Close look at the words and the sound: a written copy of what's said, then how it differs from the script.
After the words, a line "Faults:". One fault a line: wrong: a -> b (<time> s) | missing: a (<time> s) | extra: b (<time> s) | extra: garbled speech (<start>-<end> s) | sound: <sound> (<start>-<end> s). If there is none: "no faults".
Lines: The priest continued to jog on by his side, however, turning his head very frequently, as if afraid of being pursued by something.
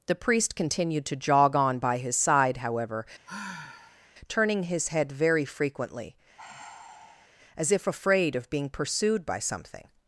The priest continued to jog on by his side, however, turning his head very frequently, as if afraid of being pursued by something.
Faults:
sound: sigh (3.3-4.1 s)
sound: sigh (6.4-7.3 s)